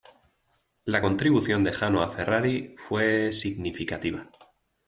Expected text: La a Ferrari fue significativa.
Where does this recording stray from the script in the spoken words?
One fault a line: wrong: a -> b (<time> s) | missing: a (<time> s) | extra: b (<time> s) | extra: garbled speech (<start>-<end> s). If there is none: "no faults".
extra: contribución de Jano (1.0 s)